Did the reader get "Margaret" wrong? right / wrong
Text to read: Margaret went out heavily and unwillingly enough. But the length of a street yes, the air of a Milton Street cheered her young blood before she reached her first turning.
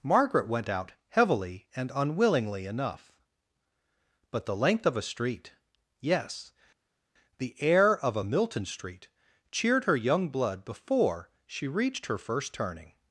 right